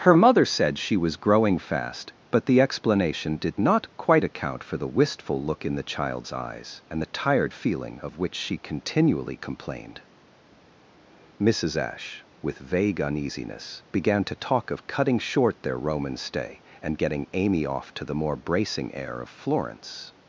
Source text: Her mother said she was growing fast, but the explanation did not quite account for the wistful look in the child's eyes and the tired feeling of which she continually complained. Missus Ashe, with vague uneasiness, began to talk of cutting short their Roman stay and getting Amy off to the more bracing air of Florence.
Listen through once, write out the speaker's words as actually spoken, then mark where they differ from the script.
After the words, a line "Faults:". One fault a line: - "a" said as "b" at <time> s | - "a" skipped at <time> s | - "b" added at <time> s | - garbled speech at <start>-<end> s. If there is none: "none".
Her mother said she was growing fast, but the explanation did not quite account for the wistful look in the child's eyes and the tired feeling of which she continually complained. Missus Ashe, with vague uneasiness, began to talk of cutting short their Roman stay and getting Amy off to the more bracing air of Florence.
Faults:
none